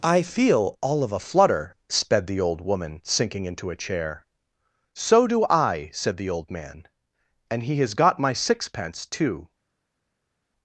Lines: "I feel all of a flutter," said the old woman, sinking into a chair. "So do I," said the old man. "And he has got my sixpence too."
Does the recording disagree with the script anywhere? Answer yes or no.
yes